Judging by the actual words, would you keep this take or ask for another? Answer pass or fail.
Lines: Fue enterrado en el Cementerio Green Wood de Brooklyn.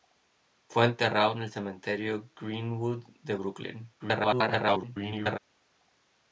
fail